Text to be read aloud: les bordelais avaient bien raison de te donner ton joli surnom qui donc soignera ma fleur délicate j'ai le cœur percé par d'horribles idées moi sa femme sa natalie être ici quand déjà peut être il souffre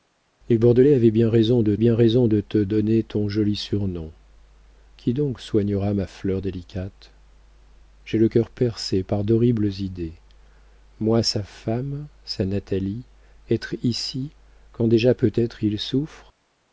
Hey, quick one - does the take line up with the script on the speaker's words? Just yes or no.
no